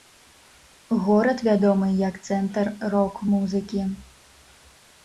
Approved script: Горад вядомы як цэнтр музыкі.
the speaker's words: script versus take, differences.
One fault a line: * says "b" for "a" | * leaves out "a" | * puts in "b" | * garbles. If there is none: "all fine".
* puts in "рок"